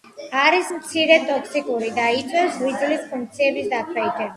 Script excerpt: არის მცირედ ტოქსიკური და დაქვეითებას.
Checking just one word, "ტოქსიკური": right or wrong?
right